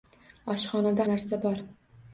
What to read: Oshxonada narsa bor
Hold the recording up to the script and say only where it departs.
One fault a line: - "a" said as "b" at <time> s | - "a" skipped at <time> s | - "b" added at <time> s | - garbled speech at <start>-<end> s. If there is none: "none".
none